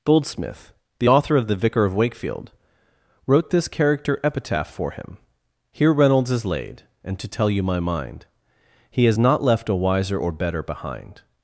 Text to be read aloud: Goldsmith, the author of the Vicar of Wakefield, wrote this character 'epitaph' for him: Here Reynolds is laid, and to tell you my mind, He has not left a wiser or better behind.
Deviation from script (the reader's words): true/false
false